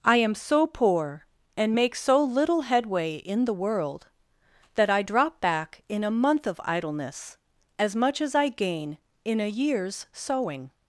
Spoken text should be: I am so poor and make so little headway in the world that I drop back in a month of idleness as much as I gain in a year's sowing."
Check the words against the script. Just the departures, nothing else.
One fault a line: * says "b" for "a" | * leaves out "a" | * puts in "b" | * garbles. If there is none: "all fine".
all fine